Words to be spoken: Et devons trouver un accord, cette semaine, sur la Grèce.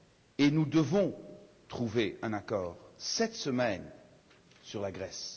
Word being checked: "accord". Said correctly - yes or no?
yes